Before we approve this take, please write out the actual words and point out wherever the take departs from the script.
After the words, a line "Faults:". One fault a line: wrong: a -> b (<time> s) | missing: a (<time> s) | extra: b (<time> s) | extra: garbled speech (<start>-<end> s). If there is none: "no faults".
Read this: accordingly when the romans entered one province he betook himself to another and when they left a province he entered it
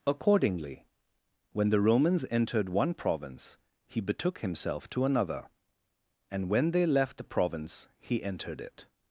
accordingly when the romans entered one province he betook himself to another and when they left the province he entered it
Faults:
wrong: a -> the (7.2 s)